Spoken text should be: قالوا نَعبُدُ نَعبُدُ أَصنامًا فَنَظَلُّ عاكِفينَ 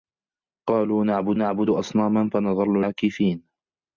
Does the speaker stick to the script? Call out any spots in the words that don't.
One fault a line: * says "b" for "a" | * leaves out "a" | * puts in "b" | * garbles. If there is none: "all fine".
all fine